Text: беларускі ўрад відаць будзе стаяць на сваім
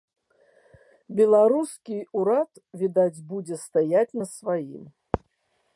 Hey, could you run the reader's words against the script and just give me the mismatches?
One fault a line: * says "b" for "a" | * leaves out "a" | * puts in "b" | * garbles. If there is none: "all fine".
all fine